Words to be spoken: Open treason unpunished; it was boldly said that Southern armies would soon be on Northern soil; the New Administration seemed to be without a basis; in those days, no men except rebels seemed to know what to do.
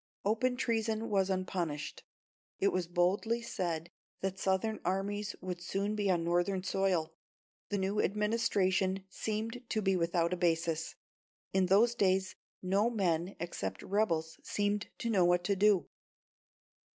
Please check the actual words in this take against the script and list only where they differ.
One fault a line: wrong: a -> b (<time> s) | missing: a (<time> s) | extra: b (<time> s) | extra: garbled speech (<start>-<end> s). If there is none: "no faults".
extra: was (1.1 s)